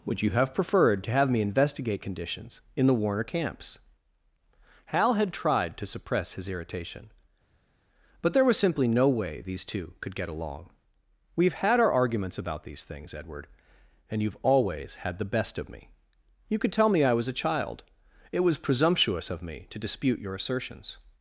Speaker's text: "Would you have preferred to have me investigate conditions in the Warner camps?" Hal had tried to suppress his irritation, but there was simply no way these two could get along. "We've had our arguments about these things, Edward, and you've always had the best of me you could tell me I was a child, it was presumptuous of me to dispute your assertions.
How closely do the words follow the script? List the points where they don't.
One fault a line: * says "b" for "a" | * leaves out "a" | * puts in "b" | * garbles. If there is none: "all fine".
all fine